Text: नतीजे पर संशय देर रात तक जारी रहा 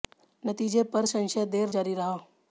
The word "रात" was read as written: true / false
false